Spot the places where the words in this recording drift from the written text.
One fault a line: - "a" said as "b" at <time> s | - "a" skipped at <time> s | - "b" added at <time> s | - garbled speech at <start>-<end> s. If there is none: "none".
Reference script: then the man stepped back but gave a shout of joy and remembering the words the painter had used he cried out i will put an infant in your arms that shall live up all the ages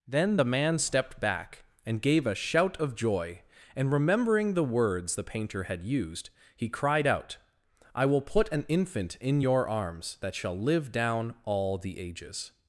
- "but" said as "and" at 1.8 s
- "up" said as "down" at 10.9 s